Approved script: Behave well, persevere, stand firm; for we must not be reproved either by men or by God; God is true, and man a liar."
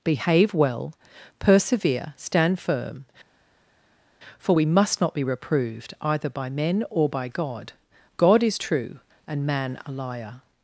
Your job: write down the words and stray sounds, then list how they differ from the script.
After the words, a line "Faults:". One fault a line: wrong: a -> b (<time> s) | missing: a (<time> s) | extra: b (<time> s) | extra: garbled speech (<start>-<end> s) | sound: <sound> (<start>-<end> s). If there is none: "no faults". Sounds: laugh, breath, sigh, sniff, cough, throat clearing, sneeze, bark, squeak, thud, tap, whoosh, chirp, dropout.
Behave well, persevere, stand firm; for we must not be reproved either by men or by God; God is true, and man a liar."
Faults:
no faults